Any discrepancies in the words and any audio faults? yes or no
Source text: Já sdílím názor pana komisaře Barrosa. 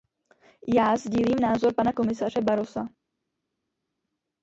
no